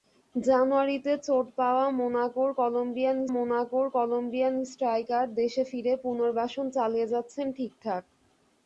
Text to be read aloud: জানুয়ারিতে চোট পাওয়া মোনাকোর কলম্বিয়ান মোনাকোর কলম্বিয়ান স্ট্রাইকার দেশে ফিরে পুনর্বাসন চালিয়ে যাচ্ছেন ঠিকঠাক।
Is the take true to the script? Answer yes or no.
yes